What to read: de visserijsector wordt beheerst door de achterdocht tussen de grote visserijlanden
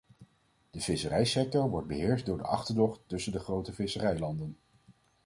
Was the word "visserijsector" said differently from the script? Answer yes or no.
no